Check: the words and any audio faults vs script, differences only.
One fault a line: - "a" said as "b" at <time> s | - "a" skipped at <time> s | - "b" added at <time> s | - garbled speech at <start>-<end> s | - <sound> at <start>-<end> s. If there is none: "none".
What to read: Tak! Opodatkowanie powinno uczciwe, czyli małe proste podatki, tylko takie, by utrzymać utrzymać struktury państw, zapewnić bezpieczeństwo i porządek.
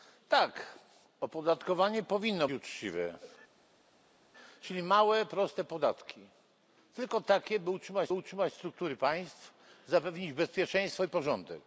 none